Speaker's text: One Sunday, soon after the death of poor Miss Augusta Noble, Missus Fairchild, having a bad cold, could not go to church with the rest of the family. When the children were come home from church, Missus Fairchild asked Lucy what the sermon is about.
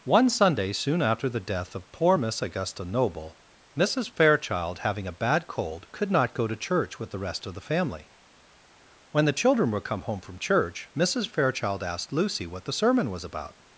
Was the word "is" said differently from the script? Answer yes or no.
yes